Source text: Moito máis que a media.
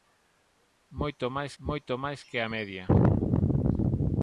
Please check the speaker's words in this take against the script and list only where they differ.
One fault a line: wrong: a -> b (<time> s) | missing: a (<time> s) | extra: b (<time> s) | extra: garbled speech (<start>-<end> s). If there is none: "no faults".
extra: moito máis (1.6 s)